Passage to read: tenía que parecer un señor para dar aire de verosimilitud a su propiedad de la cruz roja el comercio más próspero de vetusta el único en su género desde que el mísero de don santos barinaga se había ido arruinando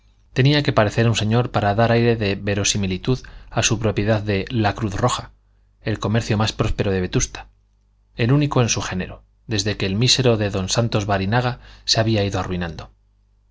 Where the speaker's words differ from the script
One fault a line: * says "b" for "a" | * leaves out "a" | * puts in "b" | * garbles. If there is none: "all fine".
all fine